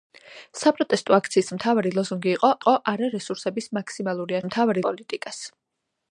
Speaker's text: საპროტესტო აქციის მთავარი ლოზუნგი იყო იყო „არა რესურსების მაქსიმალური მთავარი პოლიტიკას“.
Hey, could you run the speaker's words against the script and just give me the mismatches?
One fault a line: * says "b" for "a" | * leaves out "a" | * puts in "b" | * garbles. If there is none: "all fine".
all fine